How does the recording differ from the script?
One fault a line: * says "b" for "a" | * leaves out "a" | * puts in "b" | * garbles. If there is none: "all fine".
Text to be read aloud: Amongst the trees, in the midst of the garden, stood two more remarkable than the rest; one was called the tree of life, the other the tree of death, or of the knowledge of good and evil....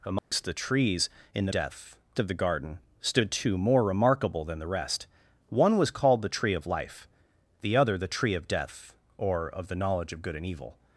* says "death" for "midst"